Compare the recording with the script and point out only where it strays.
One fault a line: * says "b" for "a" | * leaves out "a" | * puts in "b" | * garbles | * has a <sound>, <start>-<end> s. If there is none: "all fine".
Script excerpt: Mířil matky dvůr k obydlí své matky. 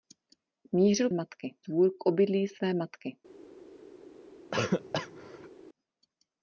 * has a cough, 4.5-5.5 s